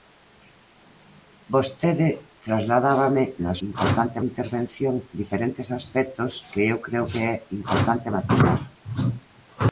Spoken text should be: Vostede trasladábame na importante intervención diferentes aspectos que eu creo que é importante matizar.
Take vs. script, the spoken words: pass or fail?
pass